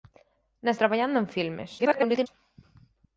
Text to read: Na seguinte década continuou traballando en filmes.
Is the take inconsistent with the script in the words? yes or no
yes